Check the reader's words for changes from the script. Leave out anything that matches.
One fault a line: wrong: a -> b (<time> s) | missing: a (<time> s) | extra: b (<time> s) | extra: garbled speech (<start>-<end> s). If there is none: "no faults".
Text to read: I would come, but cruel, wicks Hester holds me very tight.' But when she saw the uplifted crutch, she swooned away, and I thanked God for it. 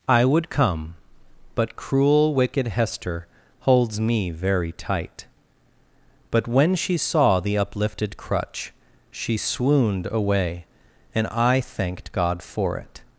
wrong: wicks -> wicked (2.3 s)